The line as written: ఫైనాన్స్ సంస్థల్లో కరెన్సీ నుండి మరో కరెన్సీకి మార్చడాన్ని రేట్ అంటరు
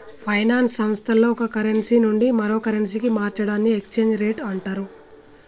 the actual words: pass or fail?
fail